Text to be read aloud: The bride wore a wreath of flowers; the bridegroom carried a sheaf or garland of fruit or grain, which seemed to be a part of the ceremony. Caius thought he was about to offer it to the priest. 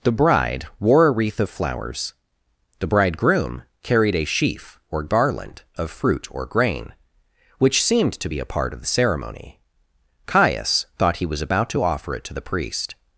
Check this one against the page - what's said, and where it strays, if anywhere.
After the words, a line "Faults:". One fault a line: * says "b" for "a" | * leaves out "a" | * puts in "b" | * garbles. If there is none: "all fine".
The bride wore a wreath of flowers; the bridegroom carried a sheaf or garland of fruit or grain, which seemed to be a part of the ceremony. Caius thought he was about to offer it to the priest.
Faults:
all fine